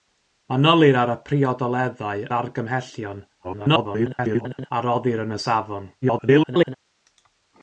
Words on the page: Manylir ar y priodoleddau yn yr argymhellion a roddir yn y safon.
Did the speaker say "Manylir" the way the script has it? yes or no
yes